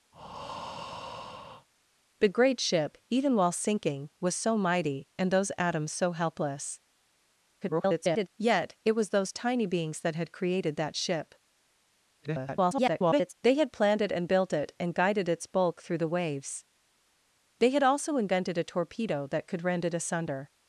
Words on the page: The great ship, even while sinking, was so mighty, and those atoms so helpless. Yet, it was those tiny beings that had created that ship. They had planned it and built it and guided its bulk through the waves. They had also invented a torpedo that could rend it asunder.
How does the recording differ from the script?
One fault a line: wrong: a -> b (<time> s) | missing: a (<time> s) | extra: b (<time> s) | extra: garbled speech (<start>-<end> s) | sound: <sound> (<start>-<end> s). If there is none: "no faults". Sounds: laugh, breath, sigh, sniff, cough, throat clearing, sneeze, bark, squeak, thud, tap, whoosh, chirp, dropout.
sound: breath (0.1-1.7 s)
extra: garbled speech (7.6-8.3 s)
extra: garbled speech (12.2-13.3 s)